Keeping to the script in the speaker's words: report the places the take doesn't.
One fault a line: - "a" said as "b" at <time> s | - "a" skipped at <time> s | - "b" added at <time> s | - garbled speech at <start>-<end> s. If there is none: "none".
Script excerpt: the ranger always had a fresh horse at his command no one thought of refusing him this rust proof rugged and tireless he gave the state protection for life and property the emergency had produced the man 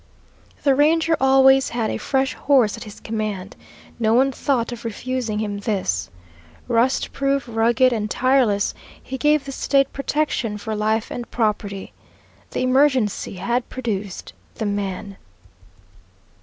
none